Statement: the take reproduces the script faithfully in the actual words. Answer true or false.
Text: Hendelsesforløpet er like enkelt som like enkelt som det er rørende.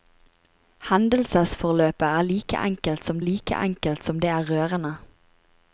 true